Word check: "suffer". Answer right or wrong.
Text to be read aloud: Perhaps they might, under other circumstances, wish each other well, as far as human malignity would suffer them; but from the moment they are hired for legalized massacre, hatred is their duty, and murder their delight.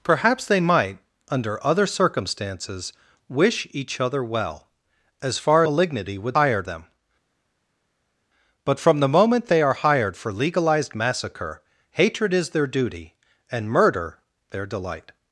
wrong